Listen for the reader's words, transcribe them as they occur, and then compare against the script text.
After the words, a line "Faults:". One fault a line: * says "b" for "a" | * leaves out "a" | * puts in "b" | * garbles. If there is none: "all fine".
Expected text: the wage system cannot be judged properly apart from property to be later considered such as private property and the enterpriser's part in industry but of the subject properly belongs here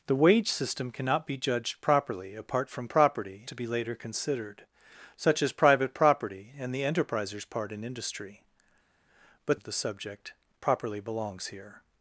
the wage system cannot be judged properly apart from property to be later considered such as private property and the enterpriser's part in industry but of the subject properly belongs here
Faults:
all fine